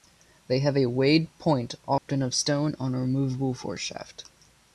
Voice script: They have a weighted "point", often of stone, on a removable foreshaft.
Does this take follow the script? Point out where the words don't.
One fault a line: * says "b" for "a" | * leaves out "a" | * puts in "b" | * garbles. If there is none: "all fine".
all fine